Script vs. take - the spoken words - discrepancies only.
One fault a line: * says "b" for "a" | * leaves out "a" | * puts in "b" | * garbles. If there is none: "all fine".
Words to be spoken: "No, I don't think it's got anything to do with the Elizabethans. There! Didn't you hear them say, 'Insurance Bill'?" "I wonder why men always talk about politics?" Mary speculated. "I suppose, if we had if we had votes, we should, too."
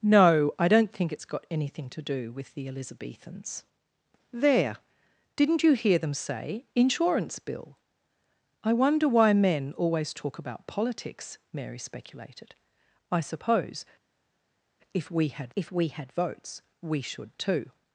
all fine